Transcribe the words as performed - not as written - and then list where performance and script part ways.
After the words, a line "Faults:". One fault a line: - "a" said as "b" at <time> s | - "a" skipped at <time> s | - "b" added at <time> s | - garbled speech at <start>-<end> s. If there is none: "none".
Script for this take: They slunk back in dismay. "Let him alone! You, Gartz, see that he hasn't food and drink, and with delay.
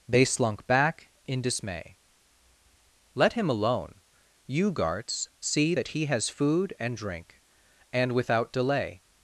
They slunk back in dismay. "Let him alone! You, Gartz, see that he has food and drink, and without delay.
Faults:
- "hasn't" said as "has" at 6.1 s
- "with" said as "without" at 8.1 s